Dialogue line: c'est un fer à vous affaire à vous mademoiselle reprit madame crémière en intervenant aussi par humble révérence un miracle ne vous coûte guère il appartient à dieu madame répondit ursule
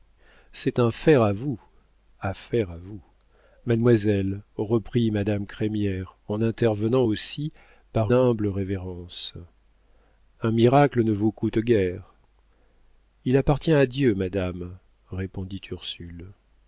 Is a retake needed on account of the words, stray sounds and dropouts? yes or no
no